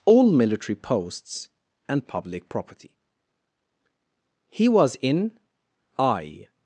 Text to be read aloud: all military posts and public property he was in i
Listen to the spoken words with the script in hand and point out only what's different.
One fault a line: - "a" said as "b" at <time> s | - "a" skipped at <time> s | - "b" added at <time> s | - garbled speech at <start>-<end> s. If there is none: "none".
none